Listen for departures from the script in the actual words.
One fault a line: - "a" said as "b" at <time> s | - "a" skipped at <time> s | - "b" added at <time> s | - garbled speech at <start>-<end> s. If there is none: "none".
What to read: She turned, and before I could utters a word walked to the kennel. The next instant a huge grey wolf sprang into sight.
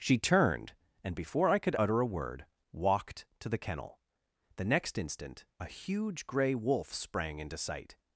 - "utters" said as "utter" at 1.7 s